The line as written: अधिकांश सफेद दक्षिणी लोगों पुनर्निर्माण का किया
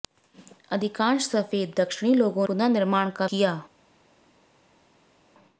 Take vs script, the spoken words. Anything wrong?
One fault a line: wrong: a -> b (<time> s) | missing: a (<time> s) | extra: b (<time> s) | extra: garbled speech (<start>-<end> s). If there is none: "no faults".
no faults